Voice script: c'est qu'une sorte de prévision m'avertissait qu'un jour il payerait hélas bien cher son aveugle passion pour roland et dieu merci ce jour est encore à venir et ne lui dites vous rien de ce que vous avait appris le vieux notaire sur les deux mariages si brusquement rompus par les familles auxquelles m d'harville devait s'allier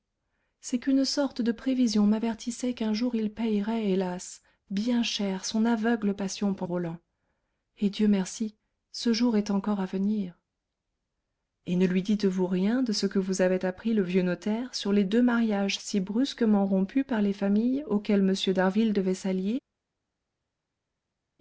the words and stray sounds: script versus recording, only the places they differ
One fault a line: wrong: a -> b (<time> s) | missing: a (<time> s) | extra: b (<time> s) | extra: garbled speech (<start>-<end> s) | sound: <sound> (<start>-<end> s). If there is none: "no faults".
no faults